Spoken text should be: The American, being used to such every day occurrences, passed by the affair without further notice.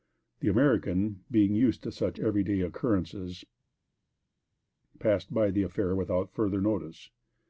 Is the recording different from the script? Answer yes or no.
no